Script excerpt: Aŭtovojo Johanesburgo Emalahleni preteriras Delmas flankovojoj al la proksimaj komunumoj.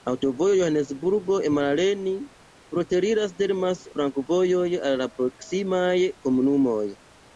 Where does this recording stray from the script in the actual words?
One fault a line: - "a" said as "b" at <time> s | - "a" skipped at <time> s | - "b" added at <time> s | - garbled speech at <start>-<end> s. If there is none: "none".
none